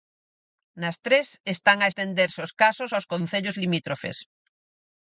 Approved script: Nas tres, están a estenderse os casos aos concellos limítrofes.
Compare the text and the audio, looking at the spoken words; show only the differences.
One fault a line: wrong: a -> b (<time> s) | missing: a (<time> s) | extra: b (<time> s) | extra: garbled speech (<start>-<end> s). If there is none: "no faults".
no faults